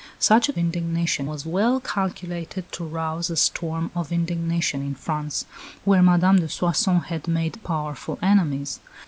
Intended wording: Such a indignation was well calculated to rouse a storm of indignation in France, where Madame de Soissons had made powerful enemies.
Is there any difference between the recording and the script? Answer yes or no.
no